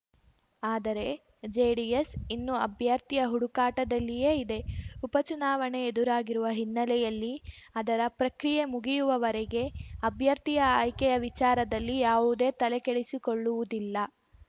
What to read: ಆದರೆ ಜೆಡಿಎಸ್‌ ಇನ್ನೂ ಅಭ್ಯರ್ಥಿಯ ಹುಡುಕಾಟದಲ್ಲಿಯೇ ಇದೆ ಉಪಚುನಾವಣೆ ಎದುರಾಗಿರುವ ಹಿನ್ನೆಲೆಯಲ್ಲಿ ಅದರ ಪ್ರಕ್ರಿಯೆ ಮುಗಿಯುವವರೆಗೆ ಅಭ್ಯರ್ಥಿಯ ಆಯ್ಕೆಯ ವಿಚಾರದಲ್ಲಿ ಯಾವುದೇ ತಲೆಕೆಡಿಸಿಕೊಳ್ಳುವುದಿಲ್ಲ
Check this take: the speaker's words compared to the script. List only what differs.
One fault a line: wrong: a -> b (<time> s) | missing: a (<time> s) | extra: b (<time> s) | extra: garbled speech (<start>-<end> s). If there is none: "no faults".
no faults